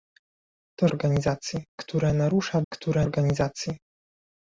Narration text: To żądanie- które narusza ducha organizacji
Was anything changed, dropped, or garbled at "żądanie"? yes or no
yes